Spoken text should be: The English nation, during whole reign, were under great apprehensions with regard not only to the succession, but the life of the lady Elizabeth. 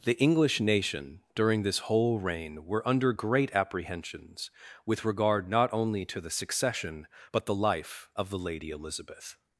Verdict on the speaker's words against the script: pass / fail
fail